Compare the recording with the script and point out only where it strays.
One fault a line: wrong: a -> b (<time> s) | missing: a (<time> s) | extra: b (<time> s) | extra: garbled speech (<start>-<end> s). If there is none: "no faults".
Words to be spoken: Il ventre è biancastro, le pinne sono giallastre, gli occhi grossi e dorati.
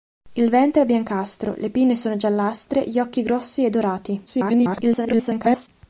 extra: garbled speech (4.3-5.7 s)